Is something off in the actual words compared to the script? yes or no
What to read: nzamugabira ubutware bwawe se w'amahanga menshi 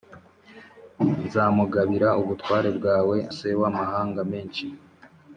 no